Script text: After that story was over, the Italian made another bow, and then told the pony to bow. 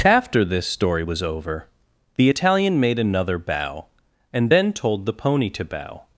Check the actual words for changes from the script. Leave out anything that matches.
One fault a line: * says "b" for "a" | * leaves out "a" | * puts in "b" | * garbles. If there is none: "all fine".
* says "this" for "that"